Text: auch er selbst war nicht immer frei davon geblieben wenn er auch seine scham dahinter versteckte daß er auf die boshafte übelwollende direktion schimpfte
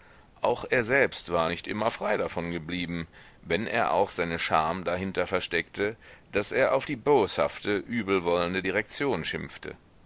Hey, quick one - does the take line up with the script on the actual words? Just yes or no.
yes